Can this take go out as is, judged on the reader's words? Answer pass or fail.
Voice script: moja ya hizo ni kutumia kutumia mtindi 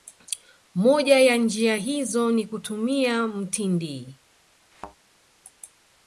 fail